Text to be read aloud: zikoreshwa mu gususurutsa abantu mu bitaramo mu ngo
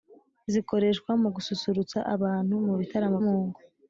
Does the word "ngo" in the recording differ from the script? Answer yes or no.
no